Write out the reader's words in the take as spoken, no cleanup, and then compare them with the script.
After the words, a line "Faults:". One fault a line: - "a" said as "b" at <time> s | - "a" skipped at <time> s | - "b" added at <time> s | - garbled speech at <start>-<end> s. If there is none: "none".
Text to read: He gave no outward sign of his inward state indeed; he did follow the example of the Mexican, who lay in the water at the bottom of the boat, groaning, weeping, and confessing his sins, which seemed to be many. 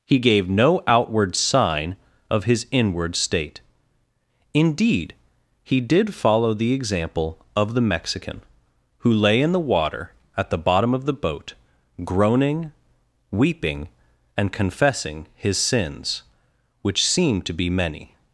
He gave no outward sign of his inward state indeed; he did follow the example of the Mexican, who lay in the water at the bottom of the boat, groaning, weeping, and confessing his sins, which seemed to be many.
Faults:
none